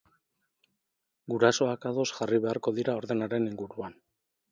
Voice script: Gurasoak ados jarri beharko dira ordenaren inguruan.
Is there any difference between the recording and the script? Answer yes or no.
no